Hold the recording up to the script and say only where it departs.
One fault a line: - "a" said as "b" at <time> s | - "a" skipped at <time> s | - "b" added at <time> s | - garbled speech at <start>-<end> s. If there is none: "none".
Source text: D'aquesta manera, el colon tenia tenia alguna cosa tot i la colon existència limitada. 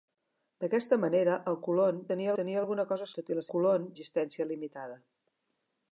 none